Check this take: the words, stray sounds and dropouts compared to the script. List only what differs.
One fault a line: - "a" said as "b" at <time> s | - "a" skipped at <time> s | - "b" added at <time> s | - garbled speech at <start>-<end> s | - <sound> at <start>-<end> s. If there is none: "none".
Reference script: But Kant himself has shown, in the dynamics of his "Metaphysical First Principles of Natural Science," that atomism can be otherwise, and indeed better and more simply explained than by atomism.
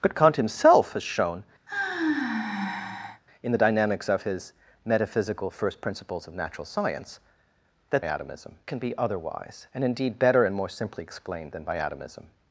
- sigh at 1.7-3.2 s